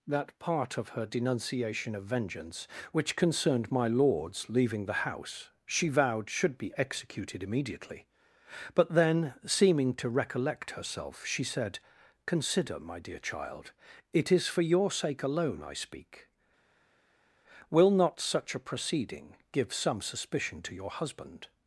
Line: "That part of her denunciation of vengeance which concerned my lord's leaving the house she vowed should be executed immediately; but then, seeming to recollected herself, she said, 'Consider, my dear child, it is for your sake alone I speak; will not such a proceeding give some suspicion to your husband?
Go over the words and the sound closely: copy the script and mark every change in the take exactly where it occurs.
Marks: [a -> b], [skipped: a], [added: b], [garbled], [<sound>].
"That part of her denunciation of vengeance which concerned my lord's leaving the house she vowed should be executed immediately; but then, seeming to [recollected -> recollect] herself, she said, 'Consider, my dear child, it is for your sake alone I speak; will not such a proceeding give some suspicion to your husband?